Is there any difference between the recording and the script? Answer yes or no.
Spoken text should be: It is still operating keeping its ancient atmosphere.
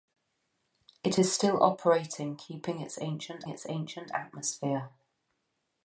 yes